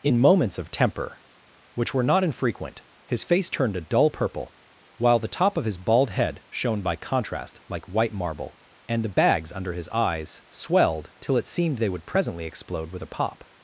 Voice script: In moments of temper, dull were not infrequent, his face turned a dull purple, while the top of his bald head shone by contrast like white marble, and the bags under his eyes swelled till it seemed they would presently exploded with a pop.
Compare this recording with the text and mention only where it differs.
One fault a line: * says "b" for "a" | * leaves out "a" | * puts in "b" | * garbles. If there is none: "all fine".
* says "which" for "dull"
* says "explode" for "exploded"